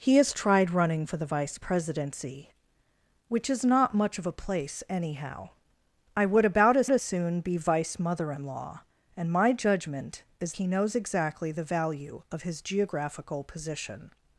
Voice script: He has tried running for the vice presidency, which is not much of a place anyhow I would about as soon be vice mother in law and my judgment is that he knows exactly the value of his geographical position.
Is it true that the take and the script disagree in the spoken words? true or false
true